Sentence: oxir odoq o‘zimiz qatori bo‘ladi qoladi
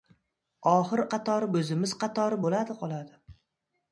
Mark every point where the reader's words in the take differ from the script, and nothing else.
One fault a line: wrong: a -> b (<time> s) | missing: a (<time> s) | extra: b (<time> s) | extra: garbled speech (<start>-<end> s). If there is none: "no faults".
wrong: odoq -> qatori (1.2 s)